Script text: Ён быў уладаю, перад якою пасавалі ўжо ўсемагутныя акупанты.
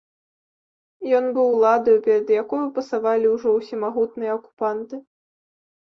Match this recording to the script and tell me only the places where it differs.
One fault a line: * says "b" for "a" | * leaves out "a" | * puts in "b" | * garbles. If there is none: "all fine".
all fine